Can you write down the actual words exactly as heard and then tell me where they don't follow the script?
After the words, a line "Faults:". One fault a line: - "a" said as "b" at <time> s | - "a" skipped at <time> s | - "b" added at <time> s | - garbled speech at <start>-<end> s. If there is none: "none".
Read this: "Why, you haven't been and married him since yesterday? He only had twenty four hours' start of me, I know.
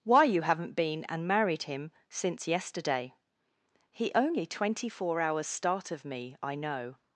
"Why, you haven't been and married him since yesterday? He only twenty four hours' start of me, I know.
Faults:
- "had" skipped at 4.5 s